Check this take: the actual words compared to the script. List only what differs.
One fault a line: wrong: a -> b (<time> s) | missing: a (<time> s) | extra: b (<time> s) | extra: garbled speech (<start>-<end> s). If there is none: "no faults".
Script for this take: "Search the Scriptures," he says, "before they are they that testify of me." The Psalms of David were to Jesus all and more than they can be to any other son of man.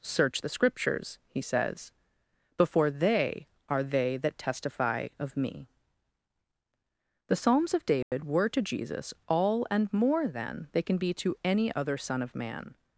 no faults